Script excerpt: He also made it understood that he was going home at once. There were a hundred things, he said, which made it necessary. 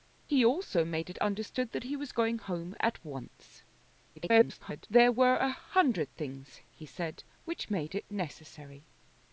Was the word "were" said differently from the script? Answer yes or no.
no